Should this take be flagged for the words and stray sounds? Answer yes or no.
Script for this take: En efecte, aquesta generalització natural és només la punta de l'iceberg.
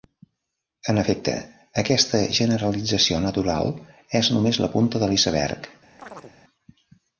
yes